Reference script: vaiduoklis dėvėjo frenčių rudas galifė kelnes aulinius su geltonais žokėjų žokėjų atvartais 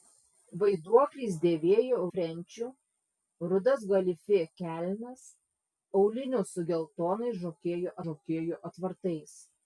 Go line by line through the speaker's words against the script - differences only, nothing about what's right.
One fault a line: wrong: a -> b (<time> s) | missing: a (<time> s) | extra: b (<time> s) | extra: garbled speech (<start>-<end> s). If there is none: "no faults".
no faults